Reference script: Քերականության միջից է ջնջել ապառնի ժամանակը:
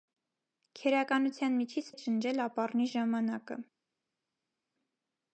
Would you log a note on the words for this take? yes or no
no